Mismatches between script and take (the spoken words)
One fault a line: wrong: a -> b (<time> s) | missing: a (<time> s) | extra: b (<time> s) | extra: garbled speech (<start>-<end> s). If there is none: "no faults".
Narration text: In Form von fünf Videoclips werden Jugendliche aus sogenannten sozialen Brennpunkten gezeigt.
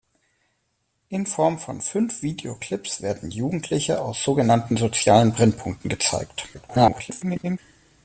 extra: garbled speech (6.5-7.6 s)